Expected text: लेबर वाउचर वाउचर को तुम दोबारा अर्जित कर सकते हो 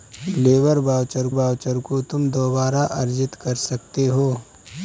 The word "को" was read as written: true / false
true